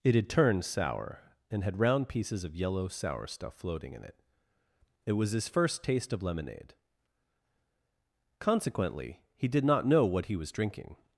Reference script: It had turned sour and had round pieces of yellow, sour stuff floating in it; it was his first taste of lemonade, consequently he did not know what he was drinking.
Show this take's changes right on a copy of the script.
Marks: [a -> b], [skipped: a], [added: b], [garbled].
It had turned sour and had round pieces of yellow, sour stuff floating in it; it was his first taste of lemonade, consequently he did not know what he was drinking.